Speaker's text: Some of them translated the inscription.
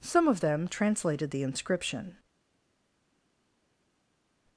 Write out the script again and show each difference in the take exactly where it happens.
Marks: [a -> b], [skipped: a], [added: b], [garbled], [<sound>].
Some of them translated the inscription.